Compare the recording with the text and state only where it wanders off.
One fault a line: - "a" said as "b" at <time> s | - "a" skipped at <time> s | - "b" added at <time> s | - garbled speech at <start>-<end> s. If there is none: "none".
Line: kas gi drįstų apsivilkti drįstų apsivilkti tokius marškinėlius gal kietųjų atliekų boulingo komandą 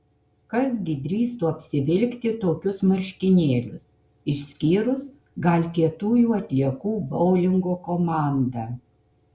- "drįstų apsivilkti" skipped at 2.3 s
- "išskyrus" added at 4.3 s